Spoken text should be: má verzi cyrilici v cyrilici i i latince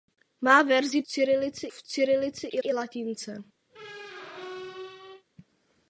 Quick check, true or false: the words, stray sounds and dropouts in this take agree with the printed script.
false